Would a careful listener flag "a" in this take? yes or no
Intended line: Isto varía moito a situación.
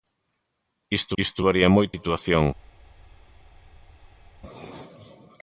yes